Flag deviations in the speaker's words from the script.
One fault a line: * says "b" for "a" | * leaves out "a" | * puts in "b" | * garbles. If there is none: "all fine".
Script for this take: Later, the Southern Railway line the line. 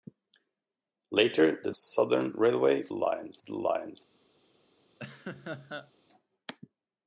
all fine